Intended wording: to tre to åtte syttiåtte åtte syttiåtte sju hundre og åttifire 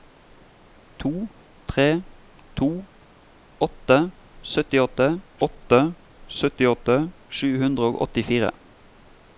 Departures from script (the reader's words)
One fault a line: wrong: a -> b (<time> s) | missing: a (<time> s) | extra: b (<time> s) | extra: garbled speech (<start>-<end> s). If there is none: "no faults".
no faults